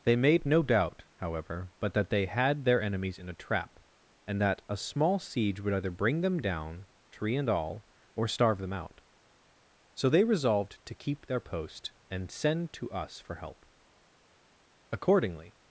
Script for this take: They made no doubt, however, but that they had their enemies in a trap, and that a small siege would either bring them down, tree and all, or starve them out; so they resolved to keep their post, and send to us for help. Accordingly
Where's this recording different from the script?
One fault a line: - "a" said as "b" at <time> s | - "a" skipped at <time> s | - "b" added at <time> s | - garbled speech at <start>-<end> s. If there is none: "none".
none